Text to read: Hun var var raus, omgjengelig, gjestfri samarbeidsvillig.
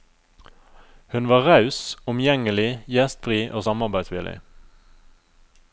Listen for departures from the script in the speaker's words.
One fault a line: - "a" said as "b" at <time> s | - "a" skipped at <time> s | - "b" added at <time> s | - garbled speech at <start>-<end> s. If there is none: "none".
- "var" skipped at 1.4 s
- "og" added at 3.5 s